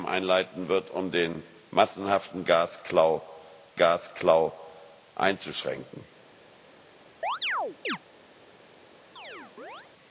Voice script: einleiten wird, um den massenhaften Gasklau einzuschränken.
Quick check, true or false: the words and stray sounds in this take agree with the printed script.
false